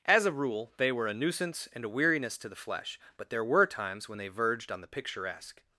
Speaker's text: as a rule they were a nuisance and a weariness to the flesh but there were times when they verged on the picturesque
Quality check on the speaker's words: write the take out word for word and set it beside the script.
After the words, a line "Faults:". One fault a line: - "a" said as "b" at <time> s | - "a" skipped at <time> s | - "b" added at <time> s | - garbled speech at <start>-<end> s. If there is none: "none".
as a rule they were a nuisance and a weariness to the flesh but there were times when they verged on the picturesque
Faults:
none